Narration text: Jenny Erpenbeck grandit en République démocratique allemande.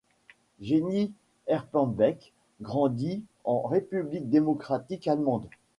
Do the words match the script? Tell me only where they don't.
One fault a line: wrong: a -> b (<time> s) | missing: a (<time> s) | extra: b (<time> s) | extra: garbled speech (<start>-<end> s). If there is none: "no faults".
no faults